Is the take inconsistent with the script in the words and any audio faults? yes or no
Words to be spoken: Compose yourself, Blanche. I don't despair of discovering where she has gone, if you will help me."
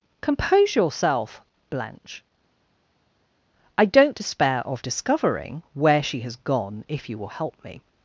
no